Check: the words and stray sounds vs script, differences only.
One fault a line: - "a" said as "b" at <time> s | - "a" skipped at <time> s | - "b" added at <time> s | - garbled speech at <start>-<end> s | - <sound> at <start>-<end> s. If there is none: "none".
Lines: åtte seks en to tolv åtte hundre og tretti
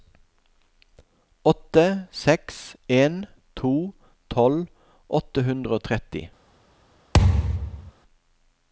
- thud at 7.1-7.9 s